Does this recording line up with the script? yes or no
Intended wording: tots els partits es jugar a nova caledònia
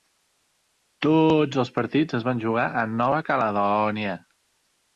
no